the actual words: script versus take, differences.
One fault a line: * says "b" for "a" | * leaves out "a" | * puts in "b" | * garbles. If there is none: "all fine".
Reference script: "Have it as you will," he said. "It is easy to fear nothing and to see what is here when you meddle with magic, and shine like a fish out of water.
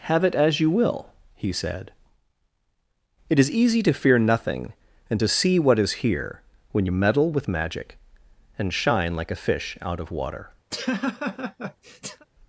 all fine